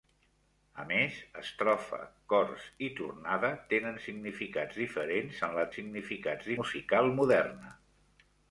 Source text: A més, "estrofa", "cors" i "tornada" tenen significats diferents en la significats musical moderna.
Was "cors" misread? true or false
false